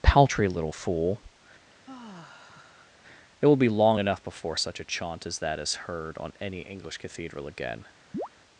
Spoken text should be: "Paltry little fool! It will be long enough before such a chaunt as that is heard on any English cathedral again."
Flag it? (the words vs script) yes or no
no